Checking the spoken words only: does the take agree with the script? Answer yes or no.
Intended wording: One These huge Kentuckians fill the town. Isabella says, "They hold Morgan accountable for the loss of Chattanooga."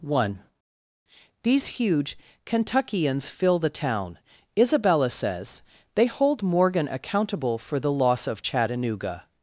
yes